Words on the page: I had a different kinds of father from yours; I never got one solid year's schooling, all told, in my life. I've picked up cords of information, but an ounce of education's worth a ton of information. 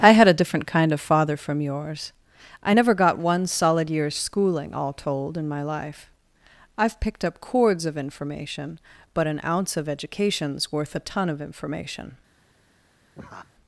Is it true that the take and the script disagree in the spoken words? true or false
true